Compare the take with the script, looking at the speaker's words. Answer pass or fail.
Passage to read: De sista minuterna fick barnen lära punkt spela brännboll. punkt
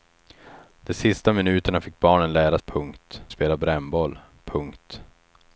pass